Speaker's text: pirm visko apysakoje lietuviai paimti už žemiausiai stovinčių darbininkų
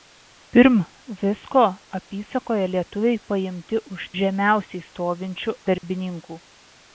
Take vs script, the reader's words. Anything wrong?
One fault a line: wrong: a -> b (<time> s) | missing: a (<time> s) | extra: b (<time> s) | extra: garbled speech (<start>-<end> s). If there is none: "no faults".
no faults